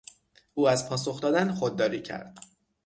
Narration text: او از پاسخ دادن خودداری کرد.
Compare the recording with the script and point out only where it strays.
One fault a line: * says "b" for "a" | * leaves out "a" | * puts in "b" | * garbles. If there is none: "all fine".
all fine